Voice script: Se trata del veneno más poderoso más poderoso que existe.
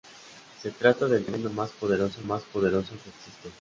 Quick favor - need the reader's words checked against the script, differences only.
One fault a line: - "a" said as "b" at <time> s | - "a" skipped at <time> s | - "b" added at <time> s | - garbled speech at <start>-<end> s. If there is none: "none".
none